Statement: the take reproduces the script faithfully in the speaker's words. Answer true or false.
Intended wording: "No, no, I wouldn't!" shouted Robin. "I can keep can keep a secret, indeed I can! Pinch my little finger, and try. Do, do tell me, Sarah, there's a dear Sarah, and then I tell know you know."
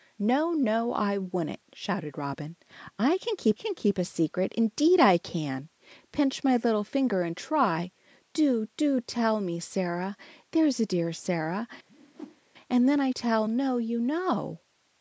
true